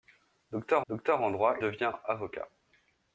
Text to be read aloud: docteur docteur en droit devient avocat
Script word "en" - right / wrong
right